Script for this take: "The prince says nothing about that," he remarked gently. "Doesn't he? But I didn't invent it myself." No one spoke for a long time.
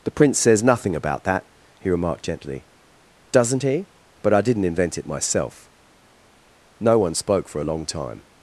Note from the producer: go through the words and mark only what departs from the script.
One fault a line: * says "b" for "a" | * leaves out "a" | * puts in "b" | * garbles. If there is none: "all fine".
all fine